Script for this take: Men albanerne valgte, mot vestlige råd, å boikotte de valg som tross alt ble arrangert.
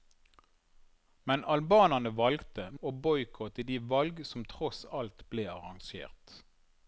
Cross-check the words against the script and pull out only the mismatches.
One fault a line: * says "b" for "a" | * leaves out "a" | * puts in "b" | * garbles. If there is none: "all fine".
* leaves out "mot vestlige råd"